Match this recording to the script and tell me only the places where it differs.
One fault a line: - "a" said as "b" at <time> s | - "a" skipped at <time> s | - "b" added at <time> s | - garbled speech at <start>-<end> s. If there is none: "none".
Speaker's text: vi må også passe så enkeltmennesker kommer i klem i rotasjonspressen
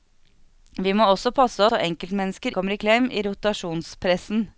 none